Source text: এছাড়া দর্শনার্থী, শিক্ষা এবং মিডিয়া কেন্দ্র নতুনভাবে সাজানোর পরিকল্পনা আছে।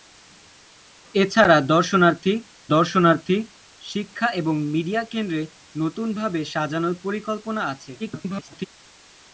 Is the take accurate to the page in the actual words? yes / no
no